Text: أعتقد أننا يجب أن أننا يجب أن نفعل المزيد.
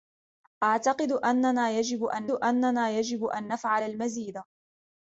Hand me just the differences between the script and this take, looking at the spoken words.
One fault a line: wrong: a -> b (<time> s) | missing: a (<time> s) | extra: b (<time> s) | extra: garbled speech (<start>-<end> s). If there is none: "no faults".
no faults